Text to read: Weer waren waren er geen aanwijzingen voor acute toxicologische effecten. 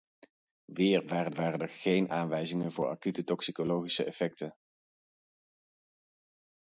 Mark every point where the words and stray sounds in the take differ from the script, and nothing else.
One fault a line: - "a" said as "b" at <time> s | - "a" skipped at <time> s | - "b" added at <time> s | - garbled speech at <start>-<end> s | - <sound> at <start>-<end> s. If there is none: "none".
none